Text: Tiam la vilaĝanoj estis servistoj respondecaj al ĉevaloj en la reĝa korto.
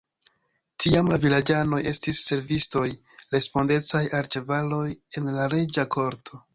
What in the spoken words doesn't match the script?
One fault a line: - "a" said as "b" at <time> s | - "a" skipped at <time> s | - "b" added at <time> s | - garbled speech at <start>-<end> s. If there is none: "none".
none